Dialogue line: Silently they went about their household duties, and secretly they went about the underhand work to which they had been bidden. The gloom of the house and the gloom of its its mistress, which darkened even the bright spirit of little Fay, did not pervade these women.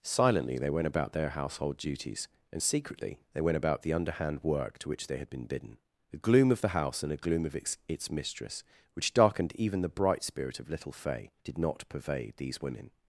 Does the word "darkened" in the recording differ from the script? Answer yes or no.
no